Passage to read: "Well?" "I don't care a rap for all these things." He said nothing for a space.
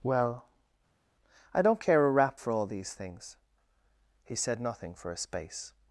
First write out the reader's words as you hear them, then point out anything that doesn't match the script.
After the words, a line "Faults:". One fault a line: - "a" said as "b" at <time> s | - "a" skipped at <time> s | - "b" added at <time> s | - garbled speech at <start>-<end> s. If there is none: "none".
"Well?" "I don't care a rap for all these things." He said nothing for a space.
Faults:
none